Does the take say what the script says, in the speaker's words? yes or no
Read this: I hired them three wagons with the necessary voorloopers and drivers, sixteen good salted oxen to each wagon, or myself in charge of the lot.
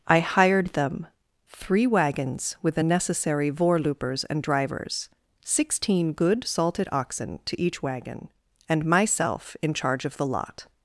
no